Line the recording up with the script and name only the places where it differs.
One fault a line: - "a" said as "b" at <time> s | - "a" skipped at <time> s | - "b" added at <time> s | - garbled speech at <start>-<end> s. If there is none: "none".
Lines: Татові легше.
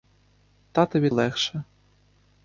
none